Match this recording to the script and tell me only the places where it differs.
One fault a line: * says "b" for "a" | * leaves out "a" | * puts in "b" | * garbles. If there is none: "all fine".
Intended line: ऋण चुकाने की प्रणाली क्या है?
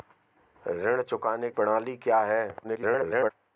* leaves out "की"
* garbles